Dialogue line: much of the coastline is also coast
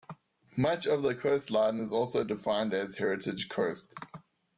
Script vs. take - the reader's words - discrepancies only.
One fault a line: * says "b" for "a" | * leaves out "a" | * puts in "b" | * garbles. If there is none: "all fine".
* puts in "defined as heritage"